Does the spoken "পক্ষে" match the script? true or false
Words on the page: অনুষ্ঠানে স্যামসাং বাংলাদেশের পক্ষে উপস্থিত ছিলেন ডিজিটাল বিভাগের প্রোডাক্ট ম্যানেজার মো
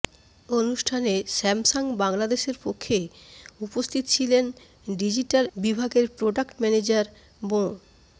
true